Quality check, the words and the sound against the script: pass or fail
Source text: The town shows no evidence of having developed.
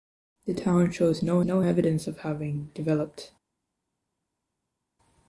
fail